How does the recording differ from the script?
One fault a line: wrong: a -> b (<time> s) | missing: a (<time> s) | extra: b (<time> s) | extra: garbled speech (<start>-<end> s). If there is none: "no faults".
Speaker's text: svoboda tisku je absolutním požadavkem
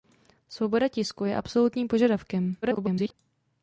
extra: garbled speech (2.6-3.1 s)